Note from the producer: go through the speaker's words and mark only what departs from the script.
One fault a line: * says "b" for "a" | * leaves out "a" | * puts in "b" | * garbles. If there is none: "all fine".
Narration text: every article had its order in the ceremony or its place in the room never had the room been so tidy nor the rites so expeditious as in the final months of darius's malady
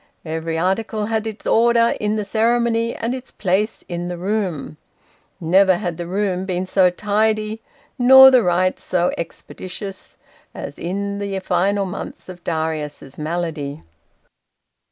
* says "and" for "or"